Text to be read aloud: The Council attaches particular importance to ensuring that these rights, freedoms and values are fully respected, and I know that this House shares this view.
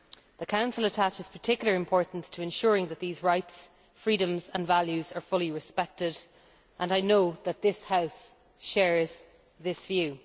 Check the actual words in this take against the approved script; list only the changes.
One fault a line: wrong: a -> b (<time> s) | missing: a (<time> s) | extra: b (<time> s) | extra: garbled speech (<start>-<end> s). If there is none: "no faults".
no faults